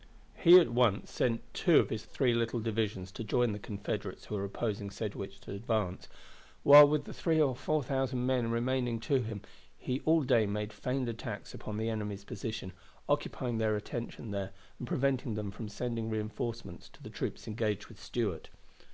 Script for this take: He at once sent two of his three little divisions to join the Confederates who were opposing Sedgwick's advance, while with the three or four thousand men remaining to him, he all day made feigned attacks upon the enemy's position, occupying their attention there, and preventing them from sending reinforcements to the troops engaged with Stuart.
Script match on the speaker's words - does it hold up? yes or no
yes